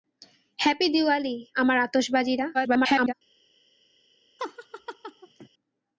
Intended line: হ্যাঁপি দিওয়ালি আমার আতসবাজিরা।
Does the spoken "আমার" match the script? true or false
true